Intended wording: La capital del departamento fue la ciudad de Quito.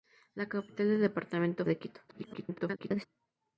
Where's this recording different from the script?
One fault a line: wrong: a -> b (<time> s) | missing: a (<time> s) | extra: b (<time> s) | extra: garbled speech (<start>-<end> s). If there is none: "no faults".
missing: fue la ciudad (1.7 s)
extra: garbled speech (2.1-3.1 s)